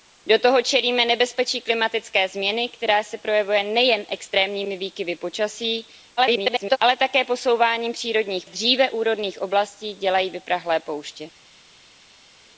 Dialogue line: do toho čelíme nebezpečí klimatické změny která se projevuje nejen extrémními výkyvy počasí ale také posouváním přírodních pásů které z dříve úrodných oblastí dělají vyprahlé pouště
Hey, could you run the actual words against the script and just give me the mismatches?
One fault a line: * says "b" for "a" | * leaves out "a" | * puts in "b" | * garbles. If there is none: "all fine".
* garbles
* leaves out "pásů které"